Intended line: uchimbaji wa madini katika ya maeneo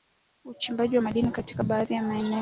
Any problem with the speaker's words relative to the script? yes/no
yes